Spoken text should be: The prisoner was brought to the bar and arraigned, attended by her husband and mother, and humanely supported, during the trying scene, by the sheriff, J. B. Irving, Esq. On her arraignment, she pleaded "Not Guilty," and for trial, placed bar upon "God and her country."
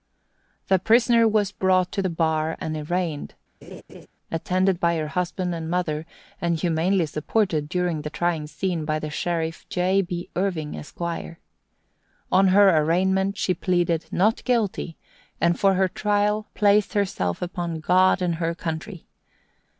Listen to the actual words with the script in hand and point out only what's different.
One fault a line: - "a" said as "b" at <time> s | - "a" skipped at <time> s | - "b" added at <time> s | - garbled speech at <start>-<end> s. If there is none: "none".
- "her" added at 15.7 s
- "bar" said as "herself" at 16.9 s